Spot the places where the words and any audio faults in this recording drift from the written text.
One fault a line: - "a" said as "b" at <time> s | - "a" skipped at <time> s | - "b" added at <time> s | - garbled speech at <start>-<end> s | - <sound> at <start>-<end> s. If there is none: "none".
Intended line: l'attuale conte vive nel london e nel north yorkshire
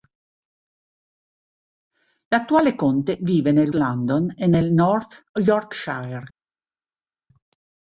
none